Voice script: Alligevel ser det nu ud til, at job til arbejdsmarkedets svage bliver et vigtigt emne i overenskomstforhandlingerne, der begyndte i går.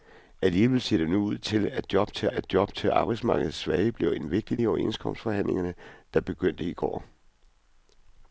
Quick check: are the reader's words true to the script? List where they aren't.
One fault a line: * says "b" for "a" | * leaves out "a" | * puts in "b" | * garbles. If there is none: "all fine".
* puts in "at job til"
* leaves out "emne"